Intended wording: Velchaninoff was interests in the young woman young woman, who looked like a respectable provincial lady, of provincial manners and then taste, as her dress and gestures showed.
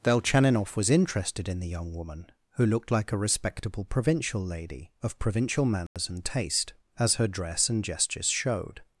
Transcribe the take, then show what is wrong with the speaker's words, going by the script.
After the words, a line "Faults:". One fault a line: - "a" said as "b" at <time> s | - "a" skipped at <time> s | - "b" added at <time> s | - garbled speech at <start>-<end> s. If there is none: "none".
Velchaninoff was interested in the young woman, who looked like a respectable provincial lady, of provincial manners and taste, as her dress and gestures showed.
Faults:
- "interests" said as "interested" at 0.9 s
- "young woman" skipped at 2.3 s
- "then" skipped at 6.2 s